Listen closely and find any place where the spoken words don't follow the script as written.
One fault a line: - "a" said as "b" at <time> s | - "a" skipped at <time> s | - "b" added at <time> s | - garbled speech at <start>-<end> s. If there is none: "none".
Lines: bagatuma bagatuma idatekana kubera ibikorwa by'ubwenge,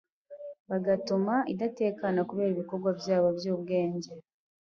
- "bagatuma" skipped at 1.4 s
- "byabo" added at 3.0 s